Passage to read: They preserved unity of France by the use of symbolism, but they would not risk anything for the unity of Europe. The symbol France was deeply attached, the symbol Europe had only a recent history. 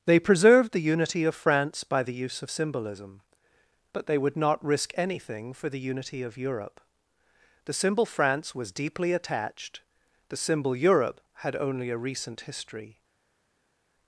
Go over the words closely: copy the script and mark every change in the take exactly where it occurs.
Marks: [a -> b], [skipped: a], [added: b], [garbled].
They preserved [added: the] unity of France by the use of symbolism, but they would not risk anything for the unity of Europe. The symbol France was deeply attached, the symbol Europe had only a recent history.